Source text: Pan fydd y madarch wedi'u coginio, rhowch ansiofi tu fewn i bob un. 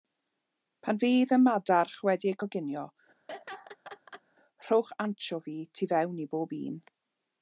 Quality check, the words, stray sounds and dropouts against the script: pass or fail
fail